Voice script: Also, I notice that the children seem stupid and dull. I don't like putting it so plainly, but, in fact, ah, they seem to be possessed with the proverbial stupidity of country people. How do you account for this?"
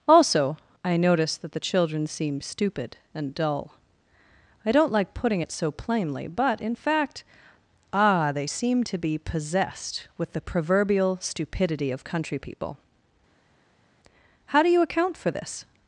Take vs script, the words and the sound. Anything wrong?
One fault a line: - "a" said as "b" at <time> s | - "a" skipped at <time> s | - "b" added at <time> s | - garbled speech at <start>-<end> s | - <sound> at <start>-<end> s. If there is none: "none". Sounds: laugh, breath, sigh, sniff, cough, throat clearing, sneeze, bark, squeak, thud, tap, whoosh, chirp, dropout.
none